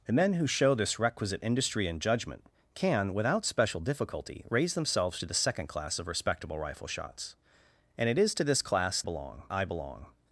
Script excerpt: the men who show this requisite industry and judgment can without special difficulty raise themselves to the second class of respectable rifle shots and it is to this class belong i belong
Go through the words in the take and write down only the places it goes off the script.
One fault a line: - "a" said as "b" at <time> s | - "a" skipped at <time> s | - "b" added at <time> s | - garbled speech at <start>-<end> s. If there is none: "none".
none